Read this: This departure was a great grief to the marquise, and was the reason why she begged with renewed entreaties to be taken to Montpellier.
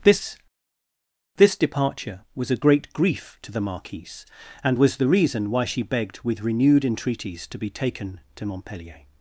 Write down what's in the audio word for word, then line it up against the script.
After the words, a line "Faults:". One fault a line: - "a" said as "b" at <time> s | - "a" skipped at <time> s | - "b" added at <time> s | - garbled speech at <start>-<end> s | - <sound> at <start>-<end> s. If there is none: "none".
This this departure was a great grief to the marquise, and was the reason why she begged with renewed entreaties to be taken to Montpellier.
Faults:
- "this" added at 1.3 s